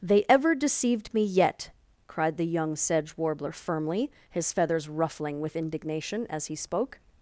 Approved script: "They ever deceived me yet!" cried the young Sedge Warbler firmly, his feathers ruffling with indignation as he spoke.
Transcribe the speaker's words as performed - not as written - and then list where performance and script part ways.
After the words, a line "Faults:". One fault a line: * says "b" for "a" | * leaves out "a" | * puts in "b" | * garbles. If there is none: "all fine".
"They ever deceived me yet!" cried the young Sedge Warbler firmly, his feathers ruffling with indignation as he spoke.
Faults:
all fine